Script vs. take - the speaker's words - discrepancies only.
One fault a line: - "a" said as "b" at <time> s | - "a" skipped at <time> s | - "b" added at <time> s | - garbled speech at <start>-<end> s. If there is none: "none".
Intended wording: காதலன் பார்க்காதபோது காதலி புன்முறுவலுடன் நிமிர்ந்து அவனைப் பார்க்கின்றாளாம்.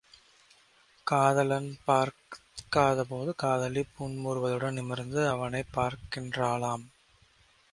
none